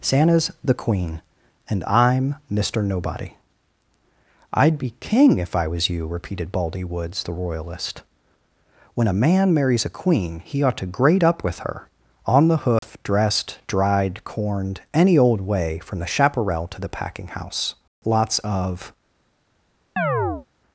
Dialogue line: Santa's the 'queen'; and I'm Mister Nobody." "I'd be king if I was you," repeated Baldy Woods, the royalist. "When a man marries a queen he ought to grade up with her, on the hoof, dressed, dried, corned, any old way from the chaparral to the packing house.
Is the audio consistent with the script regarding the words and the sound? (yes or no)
no